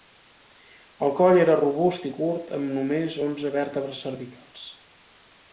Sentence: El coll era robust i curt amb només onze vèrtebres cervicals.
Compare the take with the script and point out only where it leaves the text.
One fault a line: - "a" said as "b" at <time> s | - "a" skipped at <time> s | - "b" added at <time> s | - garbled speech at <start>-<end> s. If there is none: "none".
none